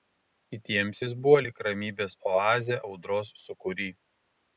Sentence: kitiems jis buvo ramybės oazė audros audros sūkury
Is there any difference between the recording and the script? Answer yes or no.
yes